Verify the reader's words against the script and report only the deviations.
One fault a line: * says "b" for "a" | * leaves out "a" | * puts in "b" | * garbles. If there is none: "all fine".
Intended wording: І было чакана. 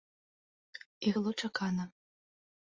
all fine